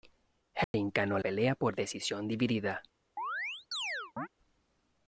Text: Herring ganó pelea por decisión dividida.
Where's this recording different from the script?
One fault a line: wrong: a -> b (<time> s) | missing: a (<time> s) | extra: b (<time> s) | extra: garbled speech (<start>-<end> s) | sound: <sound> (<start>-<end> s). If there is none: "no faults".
sound: dropout (0.6-0.7 s)
sound: chirp (3.2-4.3 s)